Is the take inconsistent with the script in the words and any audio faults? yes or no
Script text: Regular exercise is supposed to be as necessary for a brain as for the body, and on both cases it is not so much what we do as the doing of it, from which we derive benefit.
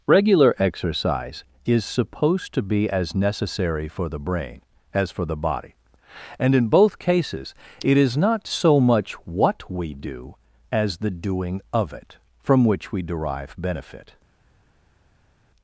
yes